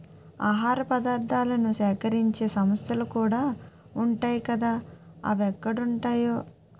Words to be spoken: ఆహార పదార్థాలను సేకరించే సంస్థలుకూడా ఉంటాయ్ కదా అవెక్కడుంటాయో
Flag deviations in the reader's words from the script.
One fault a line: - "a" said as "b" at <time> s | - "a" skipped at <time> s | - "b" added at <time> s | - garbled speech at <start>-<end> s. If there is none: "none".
none